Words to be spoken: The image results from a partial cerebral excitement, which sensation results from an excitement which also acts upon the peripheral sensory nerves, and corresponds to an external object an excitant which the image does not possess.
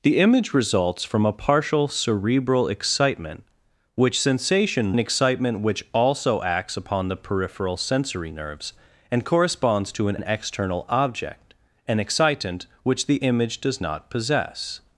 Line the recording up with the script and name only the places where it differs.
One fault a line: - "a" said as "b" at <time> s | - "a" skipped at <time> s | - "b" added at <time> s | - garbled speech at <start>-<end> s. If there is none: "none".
- "results from" skipped at 5.0 s
- "an" added at 10.2 s